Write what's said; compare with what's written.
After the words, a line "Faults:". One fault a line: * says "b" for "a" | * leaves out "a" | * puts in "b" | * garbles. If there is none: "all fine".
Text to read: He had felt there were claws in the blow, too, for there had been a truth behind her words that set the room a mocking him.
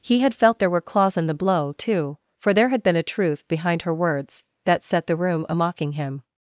He had felt there were claws in the blow, too, for there had been a truth behind her words that set the room a mocking him.
Faults:
all fine